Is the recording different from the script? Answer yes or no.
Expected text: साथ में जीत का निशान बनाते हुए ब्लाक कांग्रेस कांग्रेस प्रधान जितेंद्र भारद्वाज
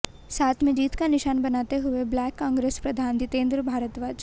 yes